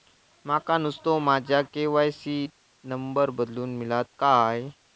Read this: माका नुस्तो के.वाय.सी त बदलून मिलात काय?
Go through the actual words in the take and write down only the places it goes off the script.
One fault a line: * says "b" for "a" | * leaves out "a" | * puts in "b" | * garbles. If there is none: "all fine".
* puts in "माझ्या"
* puts in "नंबर"